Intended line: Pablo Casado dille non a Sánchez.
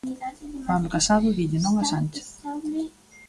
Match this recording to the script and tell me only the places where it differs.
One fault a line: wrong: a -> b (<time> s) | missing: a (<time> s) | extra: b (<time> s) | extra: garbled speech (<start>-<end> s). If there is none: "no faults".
no faults